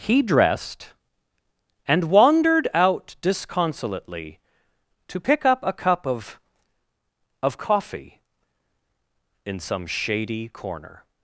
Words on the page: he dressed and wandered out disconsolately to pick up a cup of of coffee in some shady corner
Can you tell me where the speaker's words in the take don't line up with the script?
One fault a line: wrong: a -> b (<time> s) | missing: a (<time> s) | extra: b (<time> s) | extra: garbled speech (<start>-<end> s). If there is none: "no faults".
no faults